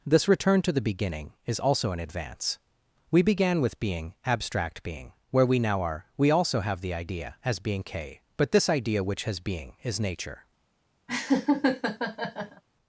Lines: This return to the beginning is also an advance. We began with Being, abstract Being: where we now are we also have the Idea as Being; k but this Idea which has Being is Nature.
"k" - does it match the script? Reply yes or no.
yes